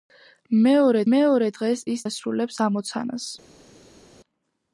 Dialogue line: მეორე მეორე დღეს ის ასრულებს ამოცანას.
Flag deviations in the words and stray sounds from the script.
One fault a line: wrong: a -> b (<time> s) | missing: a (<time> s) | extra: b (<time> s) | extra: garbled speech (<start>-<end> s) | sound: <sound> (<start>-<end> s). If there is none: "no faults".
no faults